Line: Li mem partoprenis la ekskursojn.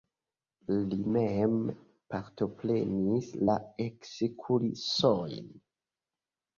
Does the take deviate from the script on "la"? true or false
false